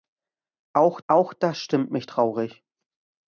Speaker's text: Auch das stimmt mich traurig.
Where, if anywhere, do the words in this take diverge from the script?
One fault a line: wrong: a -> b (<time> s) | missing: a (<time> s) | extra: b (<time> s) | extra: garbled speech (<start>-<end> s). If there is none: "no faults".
extra: auch (1.1 s)